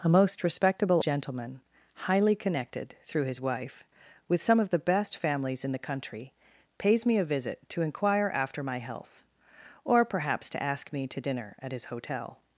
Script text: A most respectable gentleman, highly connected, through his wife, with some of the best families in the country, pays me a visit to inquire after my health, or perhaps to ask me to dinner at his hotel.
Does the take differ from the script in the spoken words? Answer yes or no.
no